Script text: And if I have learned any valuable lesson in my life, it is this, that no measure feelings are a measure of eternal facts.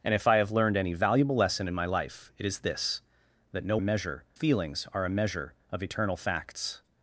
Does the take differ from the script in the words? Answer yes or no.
no